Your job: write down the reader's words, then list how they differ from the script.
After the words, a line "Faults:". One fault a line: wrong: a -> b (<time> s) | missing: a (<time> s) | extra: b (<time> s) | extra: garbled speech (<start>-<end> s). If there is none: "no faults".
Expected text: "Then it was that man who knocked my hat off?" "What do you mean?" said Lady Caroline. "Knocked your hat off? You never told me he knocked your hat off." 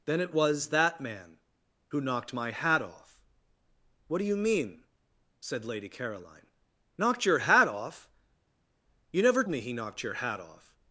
"Then it was that man who knocked my hat off?" "What do you mean?" said Lady Caroline. "Knocked your hat off? You never me he knocked your hat off."
Faults:
missing: told (9.5 s)